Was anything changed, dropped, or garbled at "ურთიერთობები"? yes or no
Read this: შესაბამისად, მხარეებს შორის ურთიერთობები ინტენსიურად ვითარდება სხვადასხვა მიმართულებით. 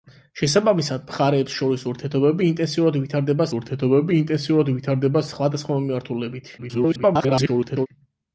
no